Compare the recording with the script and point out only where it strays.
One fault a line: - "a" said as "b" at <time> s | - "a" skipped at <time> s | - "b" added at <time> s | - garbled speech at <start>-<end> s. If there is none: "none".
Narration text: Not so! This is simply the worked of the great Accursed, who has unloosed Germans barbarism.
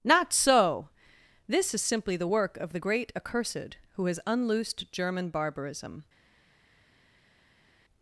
- "worked" said as "work" at 2.3 s
- "Germans" said as "German" at 4.9 s